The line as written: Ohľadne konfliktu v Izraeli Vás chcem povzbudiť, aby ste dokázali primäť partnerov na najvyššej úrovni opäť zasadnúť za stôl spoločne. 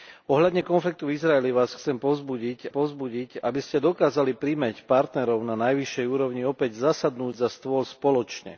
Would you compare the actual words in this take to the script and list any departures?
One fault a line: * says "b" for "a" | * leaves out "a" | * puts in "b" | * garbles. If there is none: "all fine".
* puts in "povzbudiť"